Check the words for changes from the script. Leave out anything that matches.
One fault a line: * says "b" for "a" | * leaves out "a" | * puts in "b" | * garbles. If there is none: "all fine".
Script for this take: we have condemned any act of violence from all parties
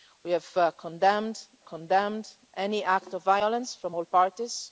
* puts in "condemned"